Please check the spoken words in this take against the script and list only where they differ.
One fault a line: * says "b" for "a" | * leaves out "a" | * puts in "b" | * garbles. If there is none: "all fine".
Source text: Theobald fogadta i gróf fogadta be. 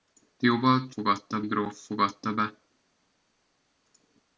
all fine